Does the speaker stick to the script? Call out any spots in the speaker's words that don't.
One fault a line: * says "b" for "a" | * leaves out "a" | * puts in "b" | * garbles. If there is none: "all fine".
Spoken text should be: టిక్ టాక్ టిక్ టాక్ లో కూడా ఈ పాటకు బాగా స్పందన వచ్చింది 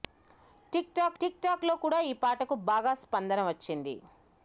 all fine